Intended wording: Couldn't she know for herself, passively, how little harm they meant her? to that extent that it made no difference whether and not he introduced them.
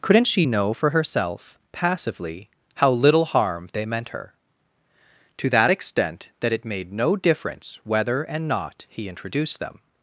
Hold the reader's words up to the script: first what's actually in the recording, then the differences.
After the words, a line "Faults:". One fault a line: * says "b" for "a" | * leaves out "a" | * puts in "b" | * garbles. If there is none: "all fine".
Couldn't she know for herself, passively, how little harm they meant her? to that extent that it made no difference whether and not he introduced them.
Faults:
all fine